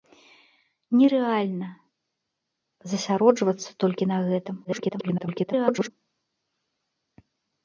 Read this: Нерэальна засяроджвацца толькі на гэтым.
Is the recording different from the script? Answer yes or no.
yes